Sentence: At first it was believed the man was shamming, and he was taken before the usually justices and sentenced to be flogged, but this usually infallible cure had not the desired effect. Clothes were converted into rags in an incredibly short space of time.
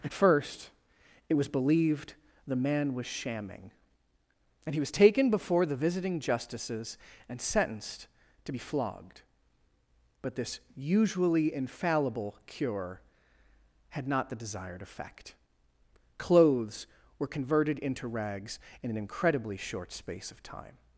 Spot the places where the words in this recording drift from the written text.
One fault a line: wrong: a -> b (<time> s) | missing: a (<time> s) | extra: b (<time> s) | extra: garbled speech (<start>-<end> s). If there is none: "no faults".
wrong: usually -> visiting (5.8 s)